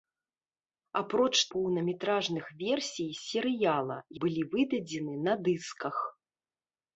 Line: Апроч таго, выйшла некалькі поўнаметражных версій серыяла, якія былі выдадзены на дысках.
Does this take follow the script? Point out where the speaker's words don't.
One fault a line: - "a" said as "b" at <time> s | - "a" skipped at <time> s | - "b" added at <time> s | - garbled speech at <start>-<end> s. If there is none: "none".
- "таго выйшла некалькі" skipped at 1.3 s
- "якія" skipped at 4.0 s